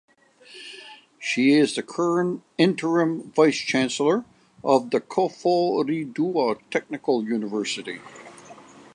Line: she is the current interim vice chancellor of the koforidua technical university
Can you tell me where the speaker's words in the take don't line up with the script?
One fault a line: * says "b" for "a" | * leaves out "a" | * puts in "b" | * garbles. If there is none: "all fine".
all fine